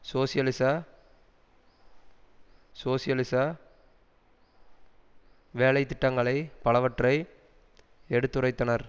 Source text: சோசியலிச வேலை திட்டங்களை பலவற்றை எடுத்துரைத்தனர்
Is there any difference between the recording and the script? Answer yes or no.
yes